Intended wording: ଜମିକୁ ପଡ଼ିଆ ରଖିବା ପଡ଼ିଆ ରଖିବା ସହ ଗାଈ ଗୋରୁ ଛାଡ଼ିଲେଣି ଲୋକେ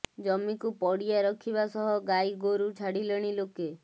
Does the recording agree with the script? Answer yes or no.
no